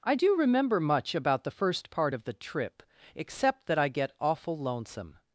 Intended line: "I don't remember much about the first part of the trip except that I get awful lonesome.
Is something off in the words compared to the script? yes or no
yes